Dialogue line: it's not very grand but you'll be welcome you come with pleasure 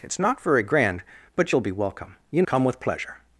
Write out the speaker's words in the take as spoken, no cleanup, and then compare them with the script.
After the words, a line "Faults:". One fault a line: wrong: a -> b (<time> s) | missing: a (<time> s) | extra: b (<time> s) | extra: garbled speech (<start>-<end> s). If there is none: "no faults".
it's not very grand but you'll be welcome you come with pleasure
Faults:
no faults